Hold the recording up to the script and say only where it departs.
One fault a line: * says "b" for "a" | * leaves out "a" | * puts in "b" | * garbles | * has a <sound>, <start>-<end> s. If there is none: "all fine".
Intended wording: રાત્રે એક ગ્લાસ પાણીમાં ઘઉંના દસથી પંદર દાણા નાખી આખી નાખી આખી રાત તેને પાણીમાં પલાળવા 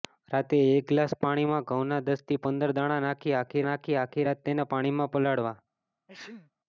* has a sneeze, 6.1-6.5 s